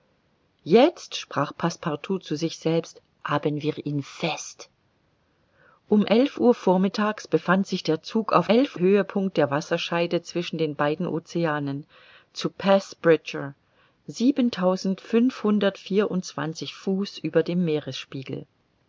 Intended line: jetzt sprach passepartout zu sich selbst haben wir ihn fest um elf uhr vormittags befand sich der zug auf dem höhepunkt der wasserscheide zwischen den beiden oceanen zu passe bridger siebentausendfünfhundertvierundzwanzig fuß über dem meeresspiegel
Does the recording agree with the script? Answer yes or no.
no